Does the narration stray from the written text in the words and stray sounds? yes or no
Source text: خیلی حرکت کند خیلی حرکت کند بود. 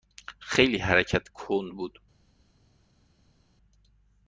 yes